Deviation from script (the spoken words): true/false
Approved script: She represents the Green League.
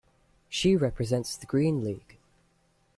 false